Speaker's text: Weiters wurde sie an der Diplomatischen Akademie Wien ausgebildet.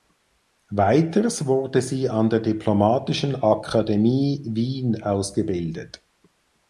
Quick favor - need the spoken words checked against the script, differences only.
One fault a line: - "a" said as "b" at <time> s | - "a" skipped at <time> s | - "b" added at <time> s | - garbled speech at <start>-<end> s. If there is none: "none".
none